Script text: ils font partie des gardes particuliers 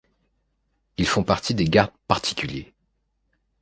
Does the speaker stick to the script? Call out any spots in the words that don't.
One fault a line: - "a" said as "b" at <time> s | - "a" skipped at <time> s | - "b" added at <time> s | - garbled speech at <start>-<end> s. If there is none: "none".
none